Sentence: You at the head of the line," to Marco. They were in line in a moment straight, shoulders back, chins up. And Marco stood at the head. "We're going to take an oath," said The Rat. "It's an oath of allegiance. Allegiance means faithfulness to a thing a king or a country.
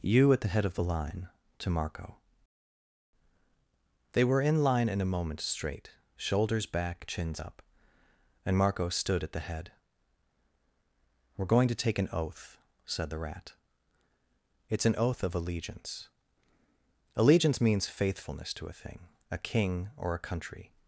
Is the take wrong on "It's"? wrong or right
right